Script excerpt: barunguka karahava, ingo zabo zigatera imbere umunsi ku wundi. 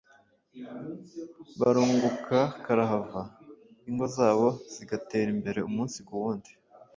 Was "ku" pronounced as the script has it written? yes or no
yes